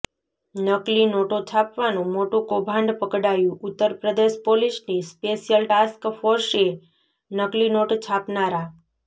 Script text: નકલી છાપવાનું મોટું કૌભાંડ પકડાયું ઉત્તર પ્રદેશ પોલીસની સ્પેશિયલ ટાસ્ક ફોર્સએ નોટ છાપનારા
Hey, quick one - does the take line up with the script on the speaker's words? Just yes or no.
no